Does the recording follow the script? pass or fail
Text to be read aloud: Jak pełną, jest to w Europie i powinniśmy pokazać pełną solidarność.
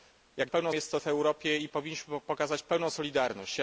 pass